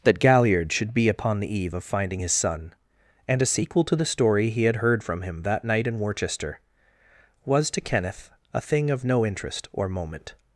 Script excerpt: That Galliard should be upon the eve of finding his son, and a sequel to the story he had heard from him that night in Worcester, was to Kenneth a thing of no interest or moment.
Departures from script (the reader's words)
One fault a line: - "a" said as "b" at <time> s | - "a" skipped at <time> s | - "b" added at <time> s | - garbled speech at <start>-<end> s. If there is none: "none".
none